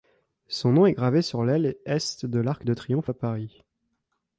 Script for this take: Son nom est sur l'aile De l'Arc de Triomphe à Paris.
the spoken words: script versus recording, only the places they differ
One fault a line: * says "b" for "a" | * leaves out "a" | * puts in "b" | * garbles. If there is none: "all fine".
* puts in "gravé"
* puts in "Est"